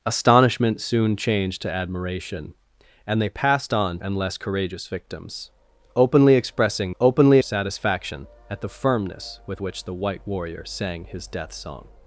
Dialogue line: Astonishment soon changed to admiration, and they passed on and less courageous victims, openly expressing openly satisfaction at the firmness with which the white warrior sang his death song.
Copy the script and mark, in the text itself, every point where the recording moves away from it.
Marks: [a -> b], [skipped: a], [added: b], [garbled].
Astonishment soon changed to admiration, and they passed on and less courageous victims, openly expressing openly satisfaction at the firmness with which the white warrior sang his death song.